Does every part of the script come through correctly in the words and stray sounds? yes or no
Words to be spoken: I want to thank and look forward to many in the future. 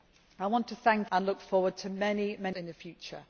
yes